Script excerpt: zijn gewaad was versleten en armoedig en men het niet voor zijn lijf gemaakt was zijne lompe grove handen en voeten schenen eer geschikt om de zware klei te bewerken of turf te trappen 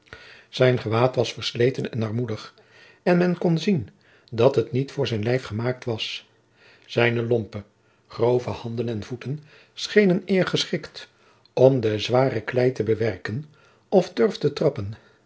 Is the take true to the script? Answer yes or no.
no